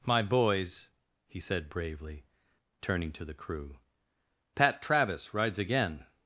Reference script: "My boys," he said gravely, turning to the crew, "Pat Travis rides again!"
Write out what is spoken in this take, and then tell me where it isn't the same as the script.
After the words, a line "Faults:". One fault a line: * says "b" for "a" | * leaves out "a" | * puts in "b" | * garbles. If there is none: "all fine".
"My boys," he said bravely, turning to the crew, "Pat Travis rides again!"
Faults:
* says "bravely" for "gravely"